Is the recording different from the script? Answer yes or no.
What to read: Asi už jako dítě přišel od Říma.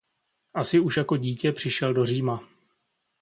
yes